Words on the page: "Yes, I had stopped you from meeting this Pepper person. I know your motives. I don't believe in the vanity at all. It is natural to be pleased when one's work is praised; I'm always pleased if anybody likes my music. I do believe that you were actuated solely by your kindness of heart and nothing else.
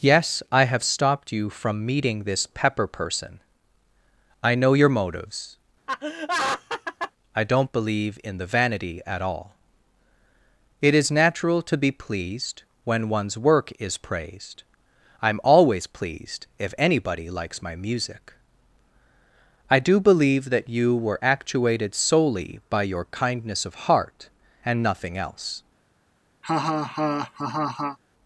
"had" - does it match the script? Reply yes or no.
no